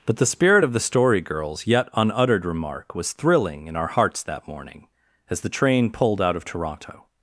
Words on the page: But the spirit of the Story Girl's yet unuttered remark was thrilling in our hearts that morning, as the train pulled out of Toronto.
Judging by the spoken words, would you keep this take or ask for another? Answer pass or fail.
pass